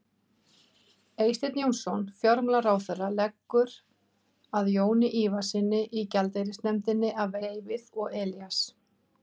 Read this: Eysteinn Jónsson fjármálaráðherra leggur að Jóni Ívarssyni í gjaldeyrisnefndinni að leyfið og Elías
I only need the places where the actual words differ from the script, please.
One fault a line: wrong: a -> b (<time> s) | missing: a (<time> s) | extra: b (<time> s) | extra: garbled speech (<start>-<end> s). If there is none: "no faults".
no faults